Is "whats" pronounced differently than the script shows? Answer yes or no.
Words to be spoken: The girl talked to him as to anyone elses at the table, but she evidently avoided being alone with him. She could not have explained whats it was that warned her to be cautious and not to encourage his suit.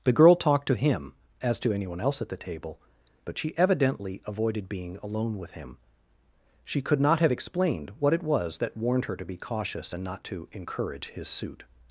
yes